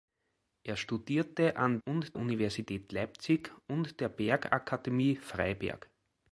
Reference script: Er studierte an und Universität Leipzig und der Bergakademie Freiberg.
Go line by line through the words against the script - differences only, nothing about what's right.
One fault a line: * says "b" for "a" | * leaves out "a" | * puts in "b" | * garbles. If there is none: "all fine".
all fine